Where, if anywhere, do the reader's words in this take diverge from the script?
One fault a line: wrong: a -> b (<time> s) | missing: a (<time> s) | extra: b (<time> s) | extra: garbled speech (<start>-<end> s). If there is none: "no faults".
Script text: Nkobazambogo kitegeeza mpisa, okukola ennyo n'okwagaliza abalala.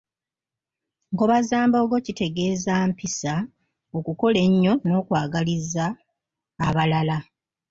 no faults